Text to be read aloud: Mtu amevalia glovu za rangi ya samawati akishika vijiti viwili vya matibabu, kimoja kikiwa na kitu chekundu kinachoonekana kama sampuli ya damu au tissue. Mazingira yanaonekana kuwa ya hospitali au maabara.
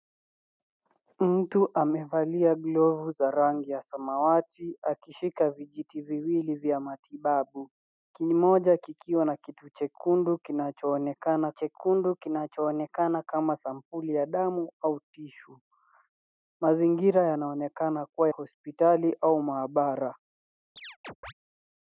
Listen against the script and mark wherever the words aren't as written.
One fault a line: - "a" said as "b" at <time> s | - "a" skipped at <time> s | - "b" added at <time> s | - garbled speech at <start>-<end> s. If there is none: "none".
- "chekundu kinachoonekana" added at 11.5 s
- "ya" skipped at 18.3 s